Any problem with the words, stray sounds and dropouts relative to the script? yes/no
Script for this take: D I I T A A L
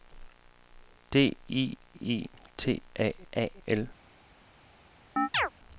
yes